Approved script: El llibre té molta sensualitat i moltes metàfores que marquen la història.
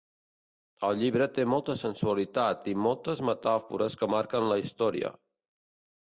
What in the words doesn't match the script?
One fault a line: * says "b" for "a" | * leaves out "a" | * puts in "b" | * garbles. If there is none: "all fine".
all fine